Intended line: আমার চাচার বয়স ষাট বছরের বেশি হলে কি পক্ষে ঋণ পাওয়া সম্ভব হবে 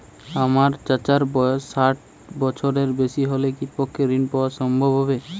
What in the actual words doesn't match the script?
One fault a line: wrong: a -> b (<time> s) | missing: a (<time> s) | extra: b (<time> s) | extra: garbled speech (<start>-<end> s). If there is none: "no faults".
no faults